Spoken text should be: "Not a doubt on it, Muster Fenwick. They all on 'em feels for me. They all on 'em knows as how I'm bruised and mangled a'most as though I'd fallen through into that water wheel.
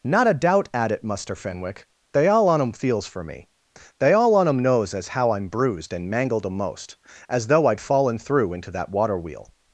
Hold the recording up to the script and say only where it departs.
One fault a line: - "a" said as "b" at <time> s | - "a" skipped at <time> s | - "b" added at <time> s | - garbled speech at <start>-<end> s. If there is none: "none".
- "on" said as "at" at 0.7 s